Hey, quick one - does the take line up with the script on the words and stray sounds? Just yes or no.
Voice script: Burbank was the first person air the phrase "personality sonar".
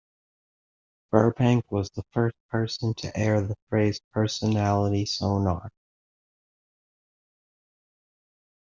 no